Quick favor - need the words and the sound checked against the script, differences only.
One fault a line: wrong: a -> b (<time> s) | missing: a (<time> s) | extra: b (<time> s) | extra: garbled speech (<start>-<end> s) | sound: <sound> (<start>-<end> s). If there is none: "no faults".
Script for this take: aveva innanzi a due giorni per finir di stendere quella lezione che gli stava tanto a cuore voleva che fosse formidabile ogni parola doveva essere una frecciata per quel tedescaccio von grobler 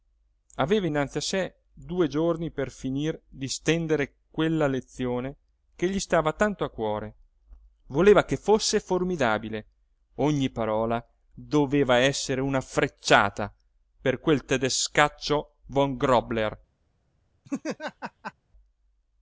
extra: sé (1.2 s)
sound: laugh (17.4-18.3 s)